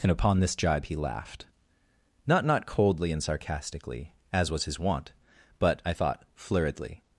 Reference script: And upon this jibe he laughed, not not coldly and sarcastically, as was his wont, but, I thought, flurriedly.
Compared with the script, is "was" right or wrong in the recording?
right